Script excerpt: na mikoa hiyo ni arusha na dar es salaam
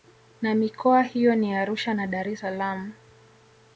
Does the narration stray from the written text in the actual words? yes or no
no